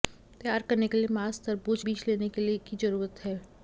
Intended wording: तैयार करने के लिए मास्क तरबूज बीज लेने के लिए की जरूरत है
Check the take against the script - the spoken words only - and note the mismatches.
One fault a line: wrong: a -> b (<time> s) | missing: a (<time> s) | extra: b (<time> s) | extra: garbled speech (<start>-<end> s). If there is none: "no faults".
no faults